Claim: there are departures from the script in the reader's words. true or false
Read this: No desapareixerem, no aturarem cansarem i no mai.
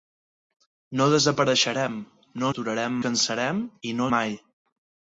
false